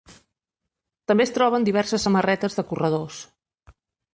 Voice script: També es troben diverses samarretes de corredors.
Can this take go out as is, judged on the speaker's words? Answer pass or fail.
pass